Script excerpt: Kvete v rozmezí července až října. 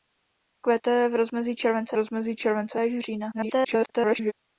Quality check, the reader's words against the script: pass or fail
fail